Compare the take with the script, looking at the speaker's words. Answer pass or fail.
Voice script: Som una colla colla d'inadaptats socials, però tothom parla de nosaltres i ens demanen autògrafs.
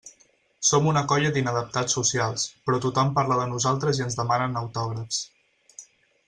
fail